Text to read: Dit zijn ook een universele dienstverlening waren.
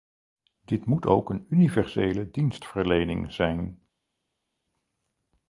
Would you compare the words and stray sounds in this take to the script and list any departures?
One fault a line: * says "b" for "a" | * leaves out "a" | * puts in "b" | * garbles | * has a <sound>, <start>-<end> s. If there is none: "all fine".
* says "moet" for "zijn"
* says "zijn" for "waren"